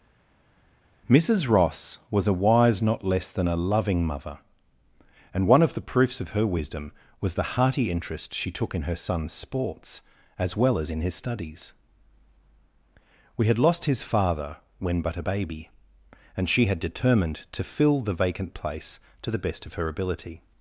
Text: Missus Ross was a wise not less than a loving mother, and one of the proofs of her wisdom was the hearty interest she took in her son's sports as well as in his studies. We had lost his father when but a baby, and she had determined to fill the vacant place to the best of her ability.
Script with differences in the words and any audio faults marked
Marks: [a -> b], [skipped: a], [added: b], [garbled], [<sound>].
Missus Ross was a wise not less than a loving mother, and one of the proofs of her wisdom was the hearty interest she took in her son's sports as well as in his studies. We had lost his father when but a baby, and she had determined to fill the vacant place to the best of her ability.